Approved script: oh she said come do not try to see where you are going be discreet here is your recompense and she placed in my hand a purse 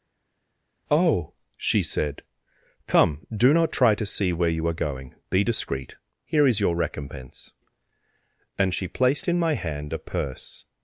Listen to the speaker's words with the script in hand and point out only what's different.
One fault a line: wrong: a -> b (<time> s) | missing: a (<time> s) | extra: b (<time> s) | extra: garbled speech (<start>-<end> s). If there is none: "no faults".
no faults